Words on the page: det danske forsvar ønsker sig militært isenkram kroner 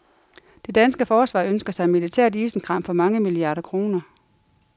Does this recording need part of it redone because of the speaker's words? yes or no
yes